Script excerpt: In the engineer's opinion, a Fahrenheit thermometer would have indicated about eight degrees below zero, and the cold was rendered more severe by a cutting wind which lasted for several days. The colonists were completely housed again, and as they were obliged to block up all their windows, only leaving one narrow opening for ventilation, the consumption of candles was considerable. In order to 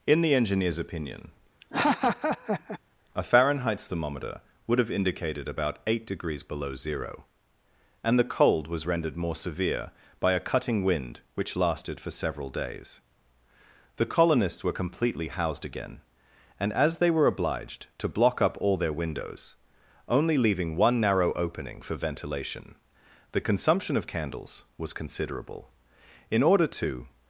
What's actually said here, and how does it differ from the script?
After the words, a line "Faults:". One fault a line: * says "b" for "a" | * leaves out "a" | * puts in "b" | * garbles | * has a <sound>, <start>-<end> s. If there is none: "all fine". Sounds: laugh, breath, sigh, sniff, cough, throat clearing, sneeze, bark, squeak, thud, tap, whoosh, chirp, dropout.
In the engineer's opinion, a Fahrenheit thermometer would have indicated about eight degrees below zero, and the cold was rendered more severe by a cutting wind which lasted for several days. The colonists were completely housed again, and as they were obliged to block up all their windows, only leaving one narrow opening for ventilation, the consumption of candles was considerable. In order to
Faults:
* has a laugh, 1.6-2.8 s